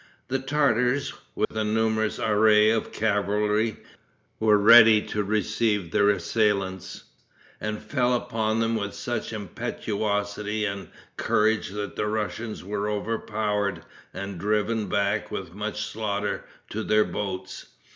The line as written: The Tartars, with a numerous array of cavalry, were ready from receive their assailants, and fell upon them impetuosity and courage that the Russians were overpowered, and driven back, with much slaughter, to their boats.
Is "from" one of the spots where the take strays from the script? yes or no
yes